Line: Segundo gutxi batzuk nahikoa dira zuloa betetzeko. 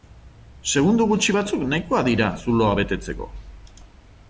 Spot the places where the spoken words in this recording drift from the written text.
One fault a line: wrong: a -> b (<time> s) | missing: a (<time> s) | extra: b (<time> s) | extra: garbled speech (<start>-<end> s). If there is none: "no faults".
no faults